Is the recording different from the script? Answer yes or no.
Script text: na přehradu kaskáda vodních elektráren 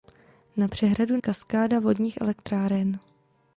no